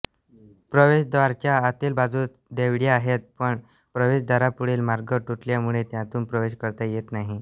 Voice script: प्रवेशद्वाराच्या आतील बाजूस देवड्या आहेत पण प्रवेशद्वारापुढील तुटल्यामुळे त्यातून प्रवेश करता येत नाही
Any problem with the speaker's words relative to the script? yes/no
yes